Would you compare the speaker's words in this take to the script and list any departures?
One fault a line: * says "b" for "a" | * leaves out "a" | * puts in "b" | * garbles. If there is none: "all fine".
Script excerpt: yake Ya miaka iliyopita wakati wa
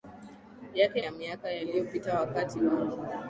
all fine